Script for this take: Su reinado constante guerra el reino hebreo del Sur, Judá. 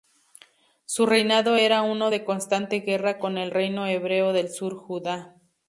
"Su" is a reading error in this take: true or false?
false